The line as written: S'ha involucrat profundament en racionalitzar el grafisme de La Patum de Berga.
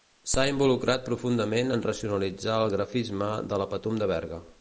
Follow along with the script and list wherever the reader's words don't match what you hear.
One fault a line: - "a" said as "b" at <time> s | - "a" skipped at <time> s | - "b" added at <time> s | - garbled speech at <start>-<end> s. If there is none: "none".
none